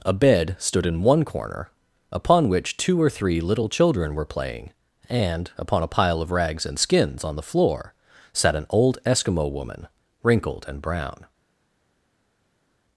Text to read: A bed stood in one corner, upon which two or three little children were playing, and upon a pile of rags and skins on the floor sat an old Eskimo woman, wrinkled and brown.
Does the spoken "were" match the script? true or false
true